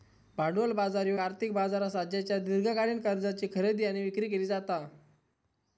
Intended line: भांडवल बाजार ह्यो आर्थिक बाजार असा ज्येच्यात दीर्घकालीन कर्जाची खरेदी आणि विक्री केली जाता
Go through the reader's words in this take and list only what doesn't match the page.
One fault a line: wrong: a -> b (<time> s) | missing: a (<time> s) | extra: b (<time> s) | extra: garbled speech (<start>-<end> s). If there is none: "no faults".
no faults